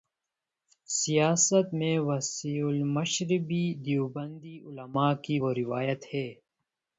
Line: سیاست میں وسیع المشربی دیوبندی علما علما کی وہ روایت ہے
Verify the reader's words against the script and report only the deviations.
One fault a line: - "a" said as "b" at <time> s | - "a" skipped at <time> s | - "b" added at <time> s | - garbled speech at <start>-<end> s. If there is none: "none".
- "علما" skipped at 5.1 s